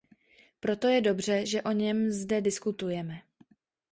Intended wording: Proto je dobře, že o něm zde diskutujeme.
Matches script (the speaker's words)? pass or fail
pass